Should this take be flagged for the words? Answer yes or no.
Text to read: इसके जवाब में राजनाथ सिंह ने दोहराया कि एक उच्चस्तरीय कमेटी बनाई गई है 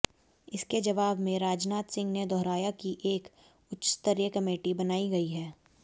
no